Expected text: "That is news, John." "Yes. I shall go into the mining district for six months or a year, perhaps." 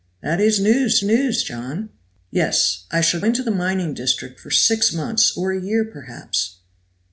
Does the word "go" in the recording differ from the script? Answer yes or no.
yes